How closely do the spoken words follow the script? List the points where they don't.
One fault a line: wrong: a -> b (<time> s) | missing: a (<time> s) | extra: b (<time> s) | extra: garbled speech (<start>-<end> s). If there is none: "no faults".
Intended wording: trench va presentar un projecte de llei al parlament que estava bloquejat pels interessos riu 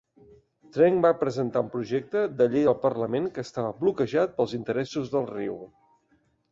extra: del (5.2 s)